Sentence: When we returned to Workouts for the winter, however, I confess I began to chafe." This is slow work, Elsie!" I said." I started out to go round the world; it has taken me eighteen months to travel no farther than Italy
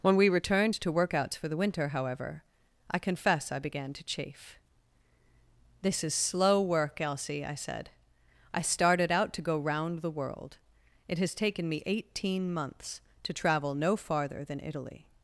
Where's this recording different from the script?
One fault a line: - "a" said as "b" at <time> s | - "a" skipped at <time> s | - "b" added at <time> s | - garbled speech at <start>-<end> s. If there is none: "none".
none